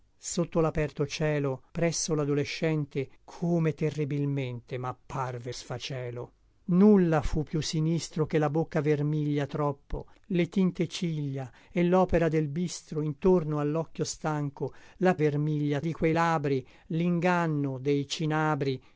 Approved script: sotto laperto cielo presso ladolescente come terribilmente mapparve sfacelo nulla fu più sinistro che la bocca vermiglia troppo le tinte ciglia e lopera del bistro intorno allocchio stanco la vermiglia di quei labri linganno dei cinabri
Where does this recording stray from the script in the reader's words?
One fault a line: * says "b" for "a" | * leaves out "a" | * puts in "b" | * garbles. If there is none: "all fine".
all fine